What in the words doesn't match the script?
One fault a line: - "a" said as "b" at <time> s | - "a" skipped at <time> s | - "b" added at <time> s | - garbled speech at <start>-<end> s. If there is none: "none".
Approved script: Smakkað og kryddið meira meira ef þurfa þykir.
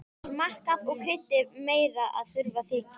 - "meira" skipped at 2.1 s